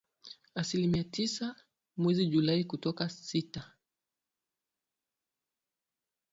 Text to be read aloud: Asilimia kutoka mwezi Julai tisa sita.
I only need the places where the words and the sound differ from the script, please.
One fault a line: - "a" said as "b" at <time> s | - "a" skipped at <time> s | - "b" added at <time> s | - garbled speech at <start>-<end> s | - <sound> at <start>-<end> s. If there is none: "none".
- "kutoka" said as "tisa" at 1.0 s
- "tisa" said as "kutoka" at 2.6 s